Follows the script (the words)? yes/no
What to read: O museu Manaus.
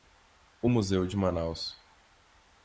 no